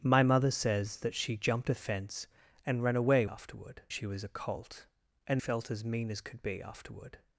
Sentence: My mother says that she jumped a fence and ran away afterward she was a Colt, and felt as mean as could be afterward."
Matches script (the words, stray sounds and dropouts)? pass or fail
pass